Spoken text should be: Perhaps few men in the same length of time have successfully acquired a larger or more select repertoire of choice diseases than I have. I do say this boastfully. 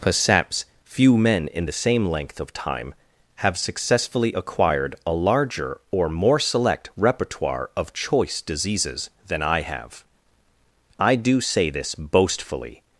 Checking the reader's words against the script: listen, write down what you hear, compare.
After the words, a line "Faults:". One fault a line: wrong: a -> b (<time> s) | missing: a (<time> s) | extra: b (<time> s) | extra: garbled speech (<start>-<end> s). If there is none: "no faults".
Perhaps few men in the same length of time have successfully acquired a larger or more select repertoire of choice diseases than I have. I do say this boastfully.
Faults:
no faults